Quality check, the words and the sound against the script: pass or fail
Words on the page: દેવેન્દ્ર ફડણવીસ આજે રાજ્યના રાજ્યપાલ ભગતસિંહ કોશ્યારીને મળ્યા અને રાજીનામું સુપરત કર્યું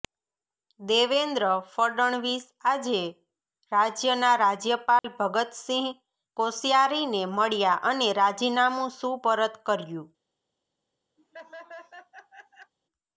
fail